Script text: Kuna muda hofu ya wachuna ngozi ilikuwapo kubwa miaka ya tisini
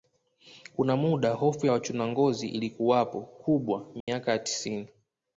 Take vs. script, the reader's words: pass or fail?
pass